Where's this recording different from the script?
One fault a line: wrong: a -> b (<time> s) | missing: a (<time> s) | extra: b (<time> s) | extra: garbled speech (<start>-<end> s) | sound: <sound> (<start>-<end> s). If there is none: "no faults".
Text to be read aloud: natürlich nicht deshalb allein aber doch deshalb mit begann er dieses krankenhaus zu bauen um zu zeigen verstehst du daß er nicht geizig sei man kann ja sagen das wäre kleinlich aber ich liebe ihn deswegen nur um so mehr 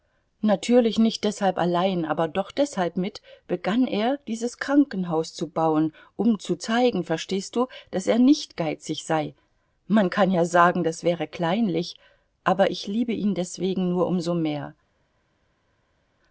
no faults